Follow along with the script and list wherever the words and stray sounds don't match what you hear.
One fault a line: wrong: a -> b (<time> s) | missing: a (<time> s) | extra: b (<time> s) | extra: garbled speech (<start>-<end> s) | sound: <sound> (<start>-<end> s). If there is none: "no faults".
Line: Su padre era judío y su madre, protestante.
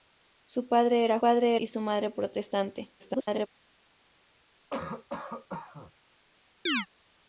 wrong: judío -> padre (1.2 s)
extra: garbled speech (3.0-3.5 s)
sound: cough (4.7-5.9 s)
sound: chirp (6.7-6.9 s)